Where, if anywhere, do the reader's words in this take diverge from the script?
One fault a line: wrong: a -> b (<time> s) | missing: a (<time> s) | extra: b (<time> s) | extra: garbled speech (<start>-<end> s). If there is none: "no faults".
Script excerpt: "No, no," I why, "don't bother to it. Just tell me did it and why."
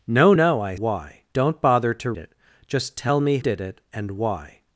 no faults